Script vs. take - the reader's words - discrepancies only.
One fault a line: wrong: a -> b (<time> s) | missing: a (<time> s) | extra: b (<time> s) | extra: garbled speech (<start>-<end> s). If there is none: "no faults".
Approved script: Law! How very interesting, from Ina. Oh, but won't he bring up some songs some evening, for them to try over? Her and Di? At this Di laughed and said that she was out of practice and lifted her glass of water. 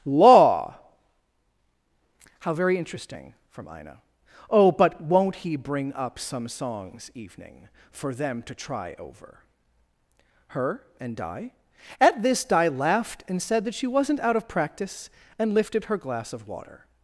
missing: some (7.1 s)
wrong: was -> wasn't (13.9 s)